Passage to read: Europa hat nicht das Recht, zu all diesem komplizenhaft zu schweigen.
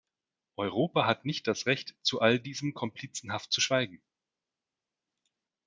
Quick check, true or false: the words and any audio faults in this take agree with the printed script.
true